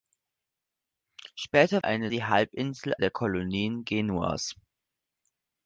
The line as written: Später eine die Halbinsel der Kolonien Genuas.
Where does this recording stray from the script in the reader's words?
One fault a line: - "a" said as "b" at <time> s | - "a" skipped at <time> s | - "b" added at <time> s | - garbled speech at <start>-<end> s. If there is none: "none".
none